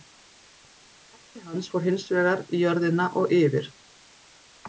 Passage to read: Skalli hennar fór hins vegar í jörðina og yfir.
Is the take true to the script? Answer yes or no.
no